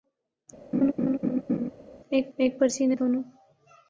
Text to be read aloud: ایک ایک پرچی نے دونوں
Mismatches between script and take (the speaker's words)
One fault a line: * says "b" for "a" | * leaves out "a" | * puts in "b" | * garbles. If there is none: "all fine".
all fine